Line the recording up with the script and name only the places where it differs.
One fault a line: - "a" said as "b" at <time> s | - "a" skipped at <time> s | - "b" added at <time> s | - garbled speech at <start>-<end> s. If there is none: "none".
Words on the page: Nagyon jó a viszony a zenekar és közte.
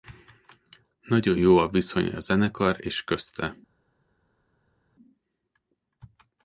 none